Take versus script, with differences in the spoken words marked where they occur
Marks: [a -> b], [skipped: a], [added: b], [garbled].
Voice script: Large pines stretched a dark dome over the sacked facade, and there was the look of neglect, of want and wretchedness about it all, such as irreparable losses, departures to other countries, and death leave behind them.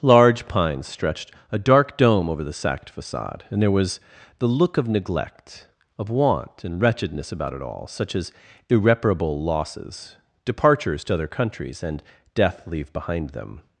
Large pines stretched a dark dome over the sacked facade, and there was the look of neglect, of want and wretchedness about it all, such as irreparable losses, departures to other countries, and death leave behind them.